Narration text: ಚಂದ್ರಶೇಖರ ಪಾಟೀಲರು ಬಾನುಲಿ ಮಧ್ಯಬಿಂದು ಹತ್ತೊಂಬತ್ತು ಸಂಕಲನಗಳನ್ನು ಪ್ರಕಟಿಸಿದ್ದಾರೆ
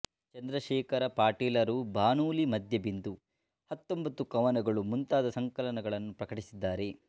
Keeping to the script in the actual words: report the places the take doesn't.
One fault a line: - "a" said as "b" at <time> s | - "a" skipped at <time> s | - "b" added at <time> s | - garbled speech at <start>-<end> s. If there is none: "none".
- "ಕವನಗಳು ಮುಂತಾದ" added at 4.3 s